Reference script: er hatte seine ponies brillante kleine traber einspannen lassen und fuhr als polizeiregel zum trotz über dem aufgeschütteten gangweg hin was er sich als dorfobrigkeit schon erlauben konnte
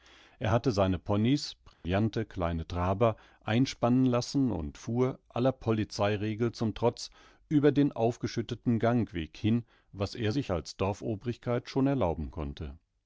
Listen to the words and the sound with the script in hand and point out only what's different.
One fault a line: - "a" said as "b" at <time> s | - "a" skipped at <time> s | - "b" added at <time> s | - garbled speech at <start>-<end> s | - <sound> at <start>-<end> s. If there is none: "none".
- dropout at 1.7-1.8 s
- "als" said as "aller" at 5.3 s
- "dem" said as "den" at 7.7 s